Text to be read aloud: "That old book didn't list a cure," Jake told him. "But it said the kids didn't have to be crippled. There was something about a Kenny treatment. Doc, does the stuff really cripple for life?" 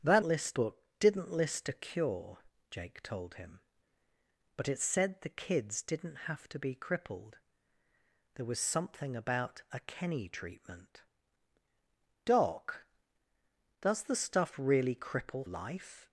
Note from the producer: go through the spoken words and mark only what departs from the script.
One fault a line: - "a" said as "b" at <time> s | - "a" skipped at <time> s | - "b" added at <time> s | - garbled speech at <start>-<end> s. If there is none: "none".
- "old" said as "list" at 0.2 s
- "for" skipped at 15.5 s